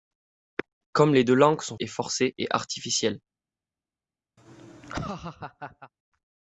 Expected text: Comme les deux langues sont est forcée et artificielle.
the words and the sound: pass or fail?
fail